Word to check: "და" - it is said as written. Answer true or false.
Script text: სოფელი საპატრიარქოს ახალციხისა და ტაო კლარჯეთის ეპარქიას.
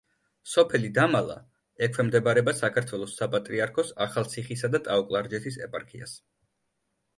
true